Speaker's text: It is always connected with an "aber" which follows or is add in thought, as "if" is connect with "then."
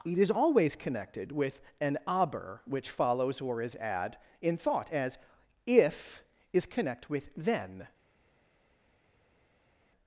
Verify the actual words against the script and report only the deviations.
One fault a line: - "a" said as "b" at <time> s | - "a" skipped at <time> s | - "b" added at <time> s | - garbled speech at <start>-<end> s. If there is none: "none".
none